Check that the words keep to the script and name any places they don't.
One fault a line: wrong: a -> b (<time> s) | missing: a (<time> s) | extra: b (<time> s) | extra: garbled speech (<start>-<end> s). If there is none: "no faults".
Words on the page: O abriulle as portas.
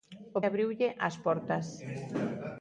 no faults